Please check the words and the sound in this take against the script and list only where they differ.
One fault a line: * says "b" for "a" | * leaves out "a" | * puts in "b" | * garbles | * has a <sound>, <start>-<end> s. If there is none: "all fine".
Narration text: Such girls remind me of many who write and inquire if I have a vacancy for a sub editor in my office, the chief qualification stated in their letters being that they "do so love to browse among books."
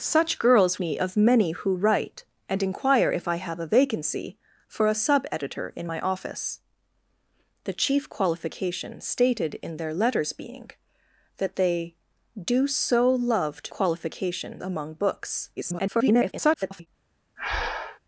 * leaves out "remind"
* says "qualification" for "browse"
* garbles
* has a breath, 17.4-18.0 s